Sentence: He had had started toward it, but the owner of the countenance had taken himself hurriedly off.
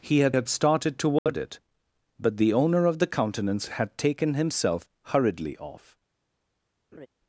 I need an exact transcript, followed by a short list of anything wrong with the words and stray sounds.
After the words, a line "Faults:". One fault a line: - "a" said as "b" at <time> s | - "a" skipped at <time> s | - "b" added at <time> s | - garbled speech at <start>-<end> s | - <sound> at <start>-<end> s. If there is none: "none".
He had had started toward it, but the owner of the countenance had taken himself hurriedly off.
Faults:
- dropout at 1.2-1.3 s
- laugh at 6.9-7.1 s